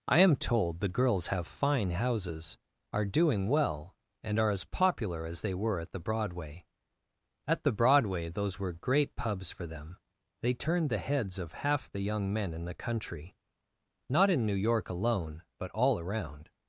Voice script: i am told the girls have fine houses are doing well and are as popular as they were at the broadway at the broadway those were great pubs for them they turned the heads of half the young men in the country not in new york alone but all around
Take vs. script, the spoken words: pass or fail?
pass